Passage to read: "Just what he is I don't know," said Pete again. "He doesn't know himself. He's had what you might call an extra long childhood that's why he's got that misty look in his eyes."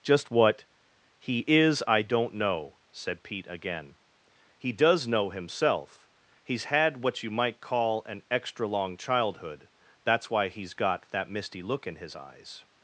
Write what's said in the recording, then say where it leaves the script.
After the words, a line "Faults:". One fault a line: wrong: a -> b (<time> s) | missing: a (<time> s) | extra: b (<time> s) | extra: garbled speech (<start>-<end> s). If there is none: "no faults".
"Just what he is I don't know," said Pete again. "He does know himself. He's had what you might call an extra long childhood that's why he's got that misty look in his eyes."
Faults:
wrong: doesn't -> does (4.7 s)